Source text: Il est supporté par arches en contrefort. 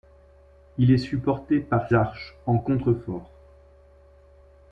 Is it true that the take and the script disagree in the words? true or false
false